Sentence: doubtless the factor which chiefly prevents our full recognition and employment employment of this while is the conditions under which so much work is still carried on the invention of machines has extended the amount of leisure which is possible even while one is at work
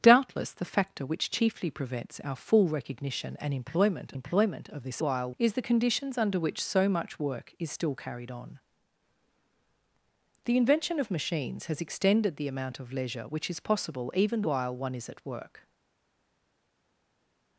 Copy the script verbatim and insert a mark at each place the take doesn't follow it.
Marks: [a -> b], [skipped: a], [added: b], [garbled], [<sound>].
doubtless the factor which chiefly prevents our full recognition and employment employment of this while is the conditions under which so much work is still carried on the invention of machines has extended the amount of leisure which is possible even while one is at work